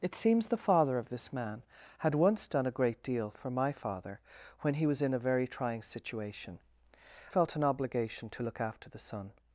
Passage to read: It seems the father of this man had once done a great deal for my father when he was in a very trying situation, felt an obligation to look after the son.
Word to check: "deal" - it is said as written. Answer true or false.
true